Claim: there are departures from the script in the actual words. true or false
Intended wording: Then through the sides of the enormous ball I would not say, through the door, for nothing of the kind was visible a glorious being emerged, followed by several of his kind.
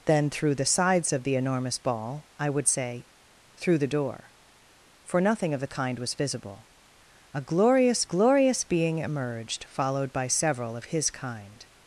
true